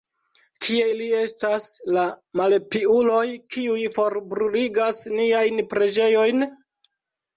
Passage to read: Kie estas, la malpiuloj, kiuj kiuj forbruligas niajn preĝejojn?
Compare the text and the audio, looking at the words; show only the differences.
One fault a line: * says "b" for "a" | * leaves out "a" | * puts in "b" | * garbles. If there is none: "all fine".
* puts in "ili"
* leaves out "kiuj"